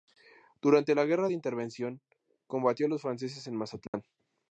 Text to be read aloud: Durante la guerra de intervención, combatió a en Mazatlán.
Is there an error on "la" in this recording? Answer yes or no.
no